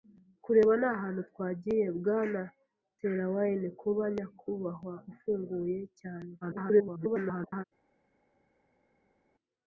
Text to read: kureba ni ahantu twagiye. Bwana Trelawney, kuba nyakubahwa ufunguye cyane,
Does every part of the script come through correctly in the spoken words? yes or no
no